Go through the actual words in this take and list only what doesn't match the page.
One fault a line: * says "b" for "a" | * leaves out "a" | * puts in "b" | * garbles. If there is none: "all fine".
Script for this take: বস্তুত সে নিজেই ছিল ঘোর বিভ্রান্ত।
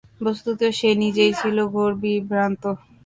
all fine